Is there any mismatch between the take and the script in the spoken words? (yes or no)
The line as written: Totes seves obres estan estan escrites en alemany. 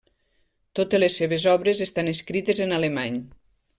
yes